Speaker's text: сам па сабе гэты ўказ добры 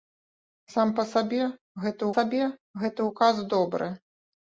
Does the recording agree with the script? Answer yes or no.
no